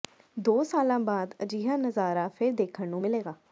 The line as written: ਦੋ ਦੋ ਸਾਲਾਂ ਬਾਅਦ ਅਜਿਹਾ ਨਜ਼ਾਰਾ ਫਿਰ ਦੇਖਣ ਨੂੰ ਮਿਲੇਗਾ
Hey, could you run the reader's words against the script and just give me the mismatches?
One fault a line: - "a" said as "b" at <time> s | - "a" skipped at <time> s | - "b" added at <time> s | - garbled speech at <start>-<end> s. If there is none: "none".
- "ਦੋ" skipped at 0.6 s